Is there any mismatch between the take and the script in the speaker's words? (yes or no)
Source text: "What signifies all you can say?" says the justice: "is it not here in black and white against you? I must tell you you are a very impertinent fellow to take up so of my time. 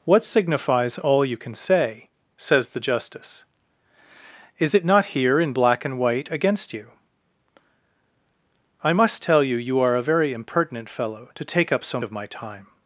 no